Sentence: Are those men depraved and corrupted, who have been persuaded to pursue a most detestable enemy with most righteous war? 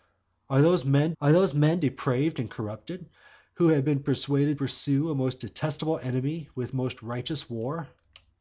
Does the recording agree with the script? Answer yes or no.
no